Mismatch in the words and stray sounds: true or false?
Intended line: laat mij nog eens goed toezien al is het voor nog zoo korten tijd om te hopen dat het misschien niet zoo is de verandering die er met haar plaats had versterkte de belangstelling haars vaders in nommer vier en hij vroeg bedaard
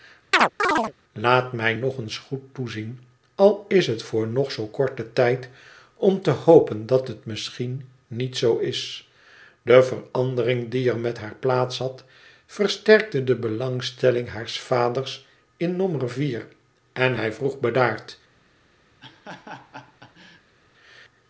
true